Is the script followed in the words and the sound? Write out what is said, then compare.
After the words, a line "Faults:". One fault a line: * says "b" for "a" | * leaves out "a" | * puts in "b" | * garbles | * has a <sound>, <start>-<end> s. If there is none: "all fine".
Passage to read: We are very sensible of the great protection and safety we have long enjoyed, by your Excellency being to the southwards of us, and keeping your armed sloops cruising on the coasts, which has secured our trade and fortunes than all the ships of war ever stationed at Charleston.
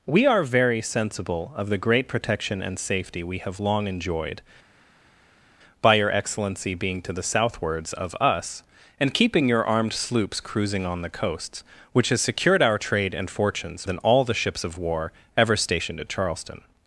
We are very sensible of the great protection and safety we have long enjoyed, by your Excellency being to the southwards of us, and keeping your armed sloops cruising on the coasts, which has secured our trade and fortunes than all the ships of war ever stationed at Charleston.
Faults:
all fine